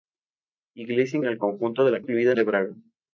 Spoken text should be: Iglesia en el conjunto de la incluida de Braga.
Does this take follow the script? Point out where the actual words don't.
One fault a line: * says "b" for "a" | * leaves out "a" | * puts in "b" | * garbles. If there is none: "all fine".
all fine